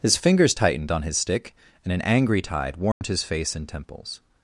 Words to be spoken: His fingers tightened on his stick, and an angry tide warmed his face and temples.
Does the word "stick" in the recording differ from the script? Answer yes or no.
no